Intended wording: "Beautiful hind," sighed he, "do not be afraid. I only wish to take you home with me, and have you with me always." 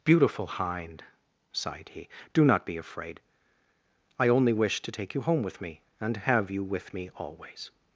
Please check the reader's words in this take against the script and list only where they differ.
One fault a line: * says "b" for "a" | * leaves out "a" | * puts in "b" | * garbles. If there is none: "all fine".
all fine